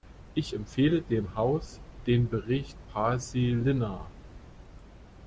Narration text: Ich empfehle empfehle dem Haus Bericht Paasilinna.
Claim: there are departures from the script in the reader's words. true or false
true